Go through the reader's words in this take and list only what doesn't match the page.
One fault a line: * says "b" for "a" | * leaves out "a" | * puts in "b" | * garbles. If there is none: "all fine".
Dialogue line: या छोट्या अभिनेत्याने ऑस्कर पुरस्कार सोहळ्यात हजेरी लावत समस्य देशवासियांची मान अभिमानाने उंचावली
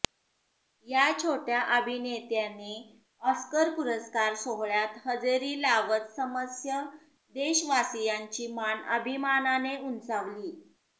all fine